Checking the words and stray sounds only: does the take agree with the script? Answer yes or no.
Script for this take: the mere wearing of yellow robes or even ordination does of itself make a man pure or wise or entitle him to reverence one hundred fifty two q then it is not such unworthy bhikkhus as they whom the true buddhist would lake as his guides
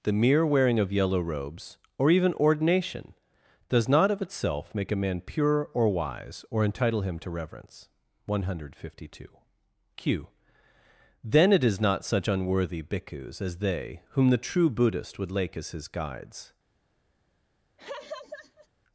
no